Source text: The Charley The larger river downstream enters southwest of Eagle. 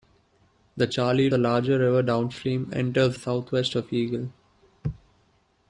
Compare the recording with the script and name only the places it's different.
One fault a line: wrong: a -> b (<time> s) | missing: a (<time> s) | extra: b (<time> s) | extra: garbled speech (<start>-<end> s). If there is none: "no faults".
no faults